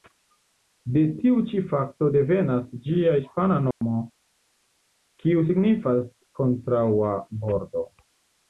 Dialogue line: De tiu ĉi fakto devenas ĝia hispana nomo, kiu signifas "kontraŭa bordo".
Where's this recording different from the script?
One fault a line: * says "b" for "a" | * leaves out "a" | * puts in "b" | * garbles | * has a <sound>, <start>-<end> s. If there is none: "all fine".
* has a dropout, 3.7-3.8 s